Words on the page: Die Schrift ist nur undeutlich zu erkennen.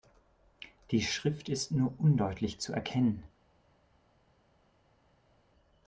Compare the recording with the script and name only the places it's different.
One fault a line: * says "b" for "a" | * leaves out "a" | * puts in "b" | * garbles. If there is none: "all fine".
all fine